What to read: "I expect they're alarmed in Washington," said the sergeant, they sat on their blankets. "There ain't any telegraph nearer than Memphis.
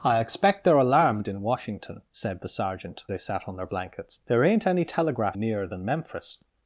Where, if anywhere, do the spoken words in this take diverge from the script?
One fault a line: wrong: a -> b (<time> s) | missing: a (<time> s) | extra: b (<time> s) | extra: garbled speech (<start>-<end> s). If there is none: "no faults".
no faults